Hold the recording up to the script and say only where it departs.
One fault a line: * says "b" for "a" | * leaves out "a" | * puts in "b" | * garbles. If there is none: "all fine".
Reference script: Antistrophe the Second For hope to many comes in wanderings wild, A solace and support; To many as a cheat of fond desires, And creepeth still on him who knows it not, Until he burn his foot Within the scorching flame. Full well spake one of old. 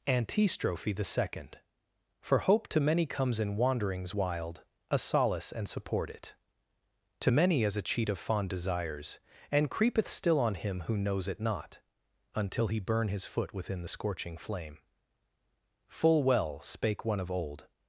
* puts in "it"